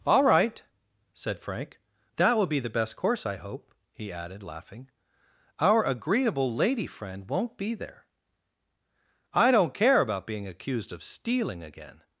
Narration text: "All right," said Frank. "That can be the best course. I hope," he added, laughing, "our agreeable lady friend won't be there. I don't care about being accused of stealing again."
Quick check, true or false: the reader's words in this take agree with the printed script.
false